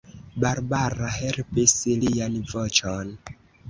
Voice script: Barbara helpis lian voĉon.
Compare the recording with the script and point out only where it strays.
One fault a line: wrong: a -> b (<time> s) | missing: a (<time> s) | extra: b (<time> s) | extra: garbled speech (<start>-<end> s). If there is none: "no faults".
no faults